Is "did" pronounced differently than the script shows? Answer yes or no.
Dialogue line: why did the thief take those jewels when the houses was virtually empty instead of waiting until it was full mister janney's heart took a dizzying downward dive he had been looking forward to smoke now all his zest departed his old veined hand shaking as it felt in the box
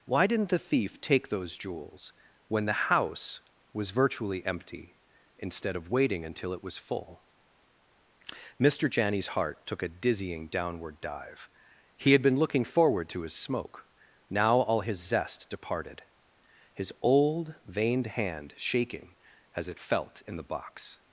yes